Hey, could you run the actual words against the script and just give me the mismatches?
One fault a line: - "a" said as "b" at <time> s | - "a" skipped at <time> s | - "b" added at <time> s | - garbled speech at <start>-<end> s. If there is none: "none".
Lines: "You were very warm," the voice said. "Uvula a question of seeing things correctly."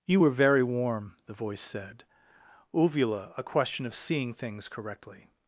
none